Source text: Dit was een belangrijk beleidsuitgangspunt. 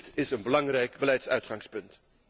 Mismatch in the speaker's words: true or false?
true